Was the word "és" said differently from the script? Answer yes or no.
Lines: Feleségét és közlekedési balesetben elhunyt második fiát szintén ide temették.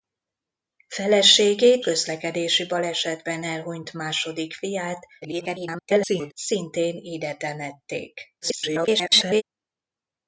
yes